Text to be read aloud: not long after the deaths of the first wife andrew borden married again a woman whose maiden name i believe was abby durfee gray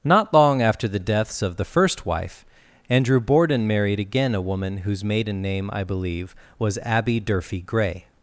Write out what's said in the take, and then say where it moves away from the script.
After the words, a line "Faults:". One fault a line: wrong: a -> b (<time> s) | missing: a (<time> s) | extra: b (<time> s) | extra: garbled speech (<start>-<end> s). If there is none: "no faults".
not long after the deaths of the first wife andrew borden married again a woman whose maiden name i believe was abby durfee gray
Faults:
no faults